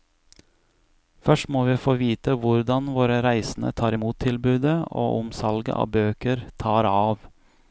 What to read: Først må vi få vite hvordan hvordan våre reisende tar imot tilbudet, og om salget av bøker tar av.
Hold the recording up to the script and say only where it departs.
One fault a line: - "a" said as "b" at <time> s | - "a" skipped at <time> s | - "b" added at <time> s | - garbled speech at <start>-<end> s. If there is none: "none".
- "hvordan" skipped at 2.9 s